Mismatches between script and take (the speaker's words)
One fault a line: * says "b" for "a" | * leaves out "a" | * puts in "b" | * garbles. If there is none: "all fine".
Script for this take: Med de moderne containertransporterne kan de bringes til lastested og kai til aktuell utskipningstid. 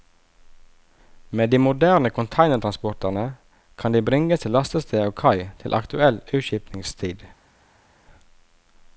all fine